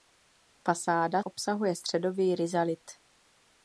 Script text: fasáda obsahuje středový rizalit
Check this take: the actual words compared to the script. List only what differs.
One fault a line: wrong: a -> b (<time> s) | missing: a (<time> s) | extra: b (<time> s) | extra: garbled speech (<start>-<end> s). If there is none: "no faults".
no faults